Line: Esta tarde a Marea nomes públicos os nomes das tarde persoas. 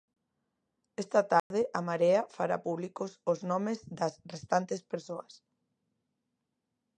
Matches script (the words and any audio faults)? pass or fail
fail